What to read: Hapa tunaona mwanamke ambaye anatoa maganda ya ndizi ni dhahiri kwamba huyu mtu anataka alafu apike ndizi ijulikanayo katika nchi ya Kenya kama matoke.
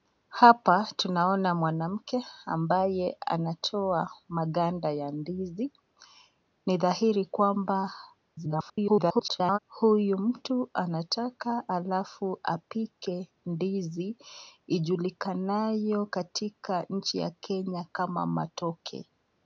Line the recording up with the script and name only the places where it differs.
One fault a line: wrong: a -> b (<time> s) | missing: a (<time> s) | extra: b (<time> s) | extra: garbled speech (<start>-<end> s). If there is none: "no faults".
extra: garbled speech (8.3-9.6 s)